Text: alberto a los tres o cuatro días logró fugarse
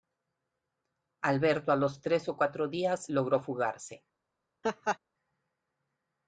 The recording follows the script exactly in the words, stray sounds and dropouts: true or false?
false